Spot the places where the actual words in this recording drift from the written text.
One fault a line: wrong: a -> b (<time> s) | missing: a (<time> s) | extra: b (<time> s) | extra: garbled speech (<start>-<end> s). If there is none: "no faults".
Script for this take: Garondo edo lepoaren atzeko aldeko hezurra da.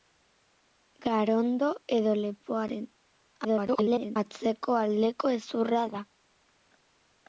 extra: garbled speech (3.4-4.2 s)